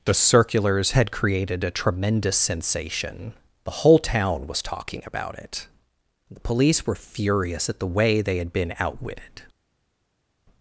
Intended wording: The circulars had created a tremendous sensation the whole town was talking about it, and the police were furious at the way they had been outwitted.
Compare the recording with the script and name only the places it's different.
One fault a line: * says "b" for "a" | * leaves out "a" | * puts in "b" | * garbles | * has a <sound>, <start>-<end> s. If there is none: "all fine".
* leaves out "and"